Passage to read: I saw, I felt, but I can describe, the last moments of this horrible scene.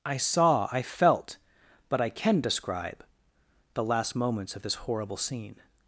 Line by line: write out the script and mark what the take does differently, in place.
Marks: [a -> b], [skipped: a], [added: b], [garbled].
I saw, I felt, but I can describe, the last moments of this horrible scene.